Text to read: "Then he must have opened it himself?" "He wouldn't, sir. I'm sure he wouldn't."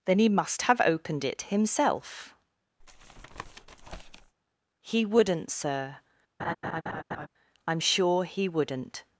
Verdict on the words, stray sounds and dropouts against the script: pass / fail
fail